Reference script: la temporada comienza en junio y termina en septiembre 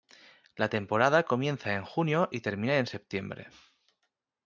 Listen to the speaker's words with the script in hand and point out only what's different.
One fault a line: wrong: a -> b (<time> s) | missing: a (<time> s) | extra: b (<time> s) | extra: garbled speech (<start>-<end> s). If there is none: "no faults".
no faults